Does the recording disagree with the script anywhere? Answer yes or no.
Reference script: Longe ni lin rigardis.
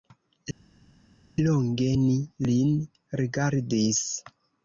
no